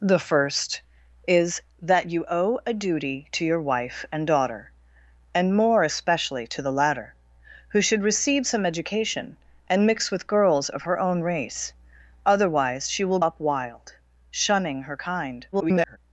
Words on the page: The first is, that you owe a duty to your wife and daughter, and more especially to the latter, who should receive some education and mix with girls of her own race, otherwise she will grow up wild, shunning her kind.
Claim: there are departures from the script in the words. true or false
true